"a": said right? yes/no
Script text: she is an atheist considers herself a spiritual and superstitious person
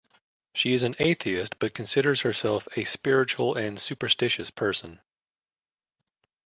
yes